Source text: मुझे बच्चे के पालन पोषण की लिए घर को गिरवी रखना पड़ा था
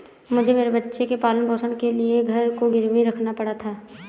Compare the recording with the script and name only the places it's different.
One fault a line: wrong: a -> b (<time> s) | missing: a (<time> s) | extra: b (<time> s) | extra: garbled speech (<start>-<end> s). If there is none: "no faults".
extra: मेरे (0.5 s)
wrong: की -> के (1.7 s)